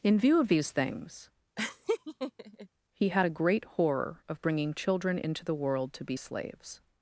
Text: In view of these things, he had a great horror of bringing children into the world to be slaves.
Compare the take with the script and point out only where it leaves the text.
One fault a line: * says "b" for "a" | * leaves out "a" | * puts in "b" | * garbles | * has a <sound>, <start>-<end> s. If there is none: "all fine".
* has a laugh, 1.6-2.7 s